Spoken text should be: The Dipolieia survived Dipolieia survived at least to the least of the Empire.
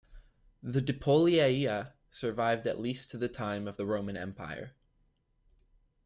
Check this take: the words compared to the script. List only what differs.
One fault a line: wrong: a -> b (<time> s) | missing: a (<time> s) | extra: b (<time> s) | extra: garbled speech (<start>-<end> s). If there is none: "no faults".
missing: Dipolieia survived (2.6 s)
wrong: least -> time (3.3 s)
extra: Roman (3.8 s)